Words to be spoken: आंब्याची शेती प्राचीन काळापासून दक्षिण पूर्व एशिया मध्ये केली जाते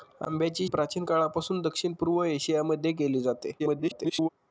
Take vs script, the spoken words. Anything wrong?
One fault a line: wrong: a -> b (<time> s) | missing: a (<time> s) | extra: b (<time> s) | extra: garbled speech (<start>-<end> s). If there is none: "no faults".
missing: शेती (0.7 s)
extra: garbled speech (3.6-4.3 s)